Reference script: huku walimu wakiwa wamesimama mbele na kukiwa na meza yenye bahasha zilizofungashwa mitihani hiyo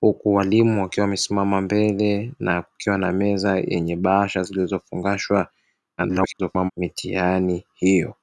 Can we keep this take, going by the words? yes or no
no